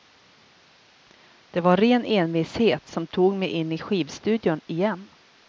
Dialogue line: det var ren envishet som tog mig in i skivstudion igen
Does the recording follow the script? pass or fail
pass